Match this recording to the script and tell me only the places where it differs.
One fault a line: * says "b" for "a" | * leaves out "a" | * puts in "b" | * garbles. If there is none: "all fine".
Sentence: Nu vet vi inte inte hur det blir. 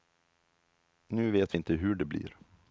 * leaves out "inte"